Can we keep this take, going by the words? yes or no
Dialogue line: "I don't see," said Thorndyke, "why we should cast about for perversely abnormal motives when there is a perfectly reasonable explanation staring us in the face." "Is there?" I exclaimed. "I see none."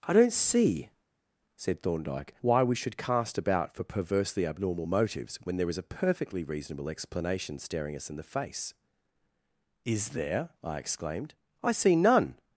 yes